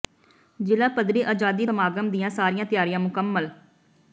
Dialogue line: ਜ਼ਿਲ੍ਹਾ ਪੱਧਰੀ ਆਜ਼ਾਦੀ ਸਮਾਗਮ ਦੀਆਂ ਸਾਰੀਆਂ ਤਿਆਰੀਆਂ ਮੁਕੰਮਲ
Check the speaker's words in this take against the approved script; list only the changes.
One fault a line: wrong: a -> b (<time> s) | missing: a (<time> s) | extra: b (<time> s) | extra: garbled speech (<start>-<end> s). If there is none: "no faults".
no faults